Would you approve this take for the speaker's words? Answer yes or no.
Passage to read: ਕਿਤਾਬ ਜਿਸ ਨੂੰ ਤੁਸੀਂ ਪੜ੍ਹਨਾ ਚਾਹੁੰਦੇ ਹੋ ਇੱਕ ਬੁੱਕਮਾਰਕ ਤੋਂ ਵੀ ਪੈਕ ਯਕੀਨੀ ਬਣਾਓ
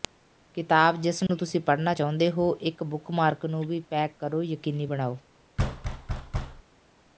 no